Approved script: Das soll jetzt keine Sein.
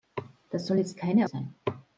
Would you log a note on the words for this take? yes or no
no